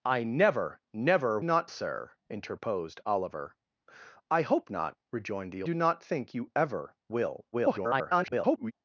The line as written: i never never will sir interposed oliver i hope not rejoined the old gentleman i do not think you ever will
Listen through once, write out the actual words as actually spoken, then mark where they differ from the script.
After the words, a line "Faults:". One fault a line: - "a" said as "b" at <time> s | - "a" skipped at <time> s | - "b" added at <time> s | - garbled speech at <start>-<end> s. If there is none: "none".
i never never not sir interposed oliver i hope not rejoined the do not think you ever will [garbled]
Faults:
- "will" said as "not" at 1.4 s
- "old gentleman i" skipped at 5.6 s
- garbled speech at 7.5-8.7 s